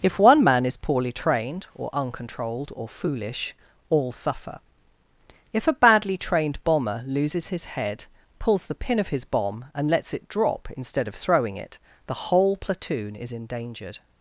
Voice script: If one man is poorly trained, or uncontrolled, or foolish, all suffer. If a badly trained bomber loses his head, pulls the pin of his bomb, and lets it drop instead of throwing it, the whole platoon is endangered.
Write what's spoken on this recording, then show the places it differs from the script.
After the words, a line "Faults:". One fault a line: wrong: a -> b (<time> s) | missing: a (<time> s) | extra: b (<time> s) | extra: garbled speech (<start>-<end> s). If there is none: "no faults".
If one man is poorly trained, or uncontrolled, or foolish, all suffer. If a badly trained bomber loses his head, pulls the pin of his bomb, and lets it drop instead of throwing it, the whole platoon is endangered.
Faults:
no faults